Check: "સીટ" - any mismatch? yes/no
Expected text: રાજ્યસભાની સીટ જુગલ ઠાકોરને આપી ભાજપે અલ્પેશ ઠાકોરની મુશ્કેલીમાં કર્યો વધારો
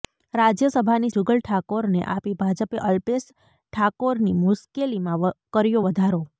yes